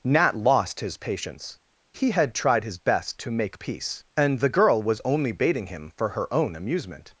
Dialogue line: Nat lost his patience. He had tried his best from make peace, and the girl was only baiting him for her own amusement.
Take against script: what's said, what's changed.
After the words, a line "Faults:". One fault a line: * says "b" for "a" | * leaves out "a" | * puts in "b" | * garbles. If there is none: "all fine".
Nat lost his patience. He had tried his best to make peace, and the girl was only baiting him for her own amusement.
Faults:
* says "to" for "from"